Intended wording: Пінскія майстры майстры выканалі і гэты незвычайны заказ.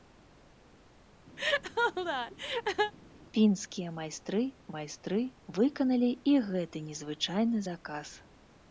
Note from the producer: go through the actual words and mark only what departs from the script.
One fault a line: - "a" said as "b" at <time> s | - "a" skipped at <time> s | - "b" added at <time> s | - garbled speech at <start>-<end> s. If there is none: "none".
none